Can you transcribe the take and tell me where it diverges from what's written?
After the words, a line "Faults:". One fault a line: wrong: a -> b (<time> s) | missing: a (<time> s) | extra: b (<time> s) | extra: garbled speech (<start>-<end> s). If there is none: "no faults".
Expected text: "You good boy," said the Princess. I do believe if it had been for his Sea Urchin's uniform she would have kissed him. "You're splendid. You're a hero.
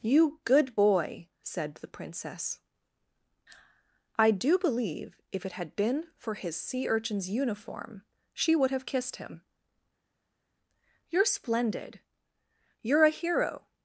"You good boy," said the Princess. I do believe if it had been for his Sea Urchin's uniform she would have kissed him. "You're splendid. You're a hero.
Faults:
no faults